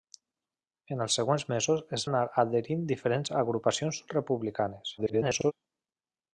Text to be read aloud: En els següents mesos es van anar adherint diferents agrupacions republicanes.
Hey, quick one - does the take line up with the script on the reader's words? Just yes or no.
no